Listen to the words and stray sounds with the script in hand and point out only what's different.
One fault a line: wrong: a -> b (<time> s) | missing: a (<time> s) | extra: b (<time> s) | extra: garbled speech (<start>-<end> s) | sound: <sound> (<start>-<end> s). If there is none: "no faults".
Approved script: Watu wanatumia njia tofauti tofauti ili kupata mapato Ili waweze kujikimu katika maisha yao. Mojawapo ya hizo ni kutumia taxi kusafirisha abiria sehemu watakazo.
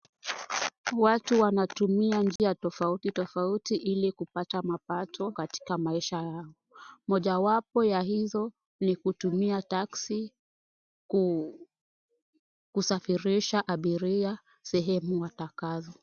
sound: dropout (2.4-2.4 s)
missing: Ili waweze kujikimu (5.3 s)